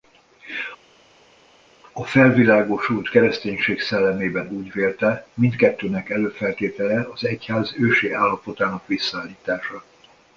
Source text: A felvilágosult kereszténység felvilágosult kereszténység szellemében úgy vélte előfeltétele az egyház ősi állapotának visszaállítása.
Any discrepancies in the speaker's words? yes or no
yes